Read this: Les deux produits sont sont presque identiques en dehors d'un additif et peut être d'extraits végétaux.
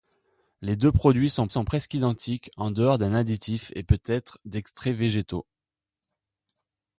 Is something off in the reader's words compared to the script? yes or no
no